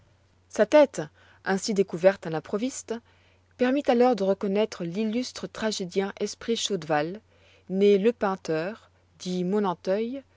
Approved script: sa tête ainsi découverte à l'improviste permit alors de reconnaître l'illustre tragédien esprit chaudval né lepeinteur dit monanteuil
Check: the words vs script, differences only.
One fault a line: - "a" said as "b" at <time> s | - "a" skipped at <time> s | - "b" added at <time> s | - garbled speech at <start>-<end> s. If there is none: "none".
none